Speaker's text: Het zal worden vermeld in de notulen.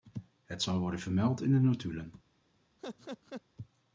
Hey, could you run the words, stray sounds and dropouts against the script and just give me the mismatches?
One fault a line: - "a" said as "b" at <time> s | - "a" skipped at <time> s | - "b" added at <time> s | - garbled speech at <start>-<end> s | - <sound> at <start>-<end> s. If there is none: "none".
- laugh at 2.8-3.4 s